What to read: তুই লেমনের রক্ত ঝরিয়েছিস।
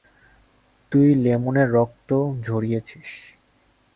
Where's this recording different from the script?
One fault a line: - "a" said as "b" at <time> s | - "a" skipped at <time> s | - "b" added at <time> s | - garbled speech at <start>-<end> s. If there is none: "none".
none